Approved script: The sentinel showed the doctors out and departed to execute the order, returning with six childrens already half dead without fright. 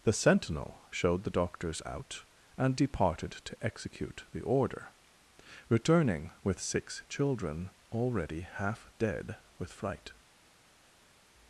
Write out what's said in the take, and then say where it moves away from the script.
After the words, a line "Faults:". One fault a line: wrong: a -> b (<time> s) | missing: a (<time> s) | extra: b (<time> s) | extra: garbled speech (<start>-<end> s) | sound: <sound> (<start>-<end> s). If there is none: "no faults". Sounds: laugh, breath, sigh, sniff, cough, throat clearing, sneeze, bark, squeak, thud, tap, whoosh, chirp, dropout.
The sentinel showed the doctors out and departed to execute the order, returning with six children already half dead with fright.
Faults:
wrong: childrens -> children (7.1 s)
wrong: without -> with (9.6 s)